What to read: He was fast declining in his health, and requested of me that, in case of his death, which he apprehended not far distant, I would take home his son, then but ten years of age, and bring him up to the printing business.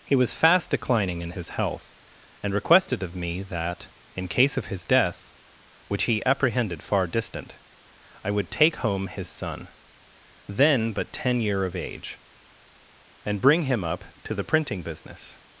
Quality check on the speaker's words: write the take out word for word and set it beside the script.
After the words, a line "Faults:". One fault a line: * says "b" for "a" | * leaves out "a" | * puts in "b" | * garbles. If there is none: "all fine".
He was fast declining in his health, and requested of me that, in case of his death, which he apprehended far distant, I would take home his son, then but ten year of age, and bring him up to the printing business.
Faults:
* leaves out "not"
* says "year" for "years"